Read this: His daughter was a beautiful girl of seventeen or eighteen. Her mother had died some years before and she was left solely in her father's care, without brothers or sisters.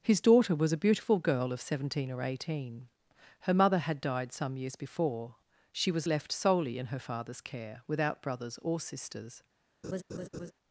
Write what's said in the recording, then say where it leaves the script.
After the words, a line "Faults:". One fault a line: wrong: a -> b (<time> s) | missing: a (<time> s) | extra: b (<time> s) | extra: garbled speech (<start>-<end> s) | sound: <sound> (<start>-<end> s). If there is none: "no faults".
His daughter was a beautiful girl of seventeen or eighteen. Her mother had died some years before she was left solely in her father's care, without brothers or sisters.
Faults:
missing: and (5.3 s)
sound: laugh (9.8-10.5 s)